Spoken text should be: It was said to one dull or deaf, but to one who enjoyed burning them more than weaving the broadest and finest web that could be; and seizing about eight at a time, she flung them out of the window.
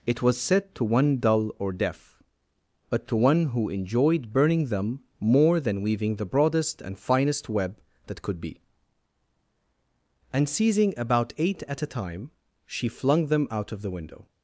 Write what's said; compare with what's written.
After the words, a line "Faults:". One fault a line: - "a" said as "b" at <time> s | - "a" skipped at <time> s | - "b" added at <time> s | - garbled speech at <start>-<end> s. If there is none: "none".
It was said to one dull or deaf, but to one who enjoyed burning them more than weaving the broadest and finest web that could be; and seizing about eight at a time, she flung them out of the window.
Faults:
none